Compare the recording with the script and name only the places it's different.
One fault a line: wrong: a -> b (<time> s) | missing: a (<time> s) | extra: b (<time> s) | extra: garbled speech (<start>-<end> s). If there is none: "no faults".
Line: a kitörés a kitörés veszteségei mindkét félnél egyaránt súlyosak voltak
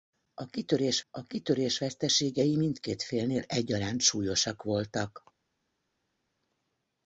no faults